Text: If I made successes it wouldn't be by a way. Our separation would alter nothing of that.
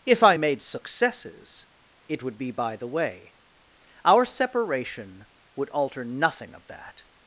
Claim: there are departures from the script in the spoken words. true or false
true